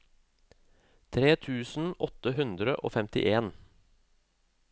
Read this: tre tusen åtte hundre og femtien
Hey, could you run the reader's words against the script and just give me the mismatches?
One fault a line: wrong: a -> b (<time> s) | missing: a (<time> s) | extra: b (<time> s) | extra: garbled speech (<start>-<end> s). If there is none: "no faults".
no faults